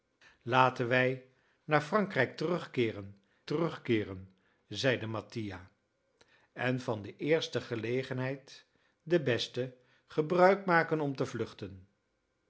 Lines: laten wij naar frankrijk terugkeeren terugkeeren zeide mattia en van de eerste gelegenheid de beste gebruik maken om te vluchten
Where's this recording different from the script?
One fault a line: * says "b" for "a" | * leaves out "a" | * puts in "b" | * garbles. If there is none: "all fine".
all fine